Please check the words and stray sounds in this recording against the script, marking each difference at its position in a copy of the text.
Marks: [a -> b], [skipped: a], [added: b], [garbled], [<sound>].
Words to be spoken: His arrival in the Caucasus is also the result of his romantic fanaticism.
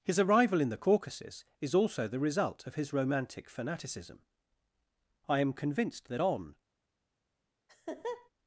His arrival in the Caucasus is also the result of his romantic fanaticism. [added: I am convinced that on] [laugh]